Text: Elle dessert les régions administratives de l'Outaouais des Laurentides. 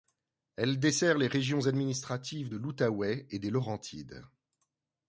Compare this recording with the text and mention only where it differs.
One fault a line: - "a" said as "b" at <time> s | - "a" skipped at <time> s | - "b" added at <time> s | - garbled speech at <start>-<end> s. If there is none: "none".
- "et" added at 3.3 s